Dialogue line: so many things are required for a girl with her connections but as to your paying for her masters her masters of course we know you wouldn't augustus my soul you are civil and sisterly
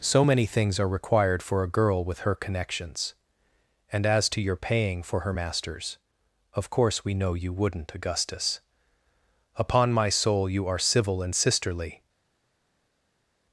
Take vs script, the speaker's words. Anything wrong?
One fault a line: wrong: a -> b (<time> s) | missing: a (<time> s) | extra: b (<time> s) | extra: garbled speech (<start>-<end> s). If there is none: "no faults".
wrong: but -> and (3.9 s)
missing: her masters (6.0 s)
extra: upon (9.5 s)